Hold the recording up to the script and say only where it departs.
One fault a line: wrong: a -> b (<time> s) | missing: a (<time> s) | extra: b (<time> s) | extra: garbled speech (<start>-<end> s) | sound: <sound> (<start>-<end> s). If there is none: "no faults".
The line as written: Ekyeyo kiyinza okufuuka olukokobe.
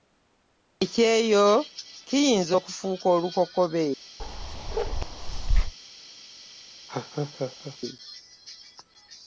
sound: bark (4.2-5.7 s)
sound: laugh (6.9-7.8 s)